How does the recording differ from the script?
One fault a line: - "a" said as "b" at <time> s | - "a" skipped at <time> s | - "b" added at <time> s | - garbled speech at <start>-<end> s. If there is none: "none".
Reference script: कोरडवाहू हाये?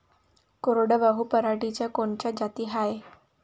- "पराटीच्या कोनच्या जाती" added at 1.3 s